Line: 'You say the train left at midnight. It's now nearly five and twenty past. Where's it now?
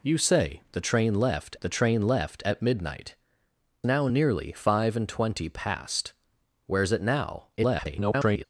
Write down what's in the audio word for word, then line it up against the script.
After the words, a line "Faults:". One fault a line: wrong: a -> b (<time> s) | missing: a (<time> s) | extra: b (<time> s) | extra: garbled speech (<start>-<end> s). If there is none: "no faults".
'You say the train left the train left at midnight. Now nearly five and twenty past. Where's it now? [garbled]
Faults:
extra: the train left (1.6 s)
missing: It's (3.1 s)
extra: garbled speech (7.6-8.4 s)